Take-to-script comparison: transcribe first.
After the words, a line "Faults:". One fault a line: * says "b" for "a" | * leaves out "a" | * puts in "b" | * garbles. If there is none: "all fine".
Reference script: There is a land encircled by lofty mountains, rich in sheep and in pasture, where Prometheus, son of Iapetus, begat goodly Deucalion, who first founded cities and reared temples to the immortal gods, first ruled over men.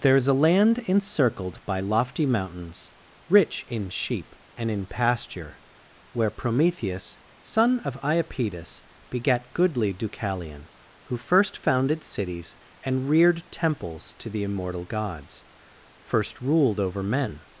There is a land encircled by lofty mountains, rich in sheep and in pasture, where Prometheus, son of Iapetus, begat goodly Deucalion, who first founded cities and reared temples to the immortal gods, first ruled over men.
Faults:
all fine